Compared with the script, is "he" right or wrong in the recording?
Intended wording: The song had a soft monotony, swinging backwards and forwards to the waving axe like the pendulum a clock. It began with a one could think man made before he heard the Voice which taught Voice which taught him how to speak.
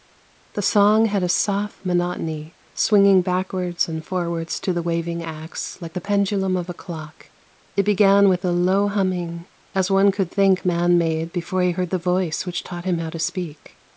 right